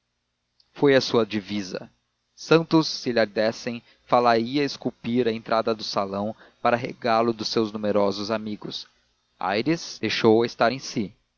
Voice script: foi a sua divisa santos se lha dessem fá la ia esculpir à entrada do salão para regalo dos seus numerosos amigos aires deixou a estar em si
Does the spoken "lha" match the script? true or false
true